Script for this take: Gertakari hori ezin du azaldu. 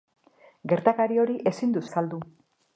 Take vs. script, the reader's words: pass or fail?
pass